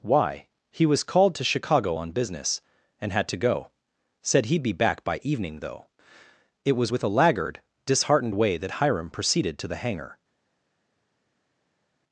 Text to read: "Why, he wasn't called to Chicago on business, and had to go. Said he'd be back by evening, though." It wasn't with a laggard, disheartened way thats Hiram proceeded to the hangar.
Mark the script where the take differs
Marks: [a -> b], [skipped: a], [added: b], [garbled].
"Why, he [wasn't -> was] called to Chicago on business, and had to go. Said he'd be back by evening, though." It [wasn't -> was] with a laggard, disheartened way [thats -> that] Hiram proceeded to the hangar.